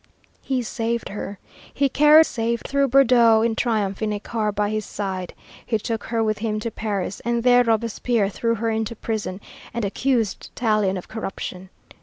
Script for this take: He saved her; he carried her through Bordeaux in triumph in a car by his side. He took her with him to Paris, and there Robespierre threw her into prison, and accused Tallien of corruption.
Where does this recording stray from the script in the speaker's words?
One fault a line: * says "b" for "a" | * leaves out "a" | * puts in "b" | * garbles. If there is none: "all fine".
* says "saved" for "her"